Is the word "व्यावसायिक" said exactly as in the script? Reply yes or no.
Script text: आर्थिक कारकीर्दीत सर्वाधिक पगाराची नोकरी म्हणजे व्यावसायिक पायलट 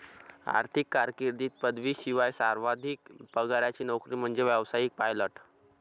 yes